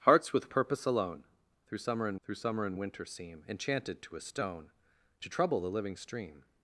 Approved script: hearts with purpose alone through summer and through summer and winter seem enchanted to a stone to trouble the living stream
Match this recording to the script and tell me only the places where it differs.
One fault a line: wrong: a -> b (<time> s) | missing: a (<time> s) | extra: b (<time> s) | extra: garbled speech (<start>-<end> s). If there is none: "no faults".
no faults